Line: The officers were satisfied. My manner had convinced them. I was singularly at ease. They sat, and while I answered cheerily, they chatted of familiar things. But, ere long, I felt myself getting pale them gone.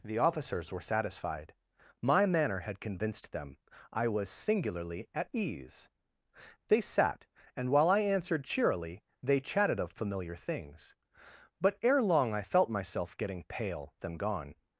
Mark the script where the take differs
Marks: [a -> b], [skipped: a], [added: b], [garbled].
The officers were satisfied. My manner had convinced them. I was singularly at ease. They sat, and while I answered cheerily, they chatted of familiar things. But, ere long, I felt myself getting pale them gone.